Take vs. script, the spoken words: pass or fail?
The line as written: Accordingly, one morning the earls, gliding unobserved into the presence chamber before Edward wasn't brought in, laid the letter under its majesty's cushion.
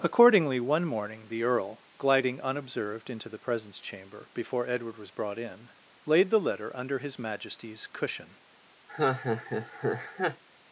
fail